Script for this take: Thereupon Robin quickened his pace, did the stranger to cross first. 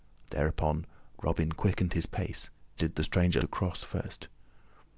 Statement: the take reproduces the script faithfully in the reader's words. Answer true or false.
true